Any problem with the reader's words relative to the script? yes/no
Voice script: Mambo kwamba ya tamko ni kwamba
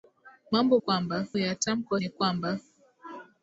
no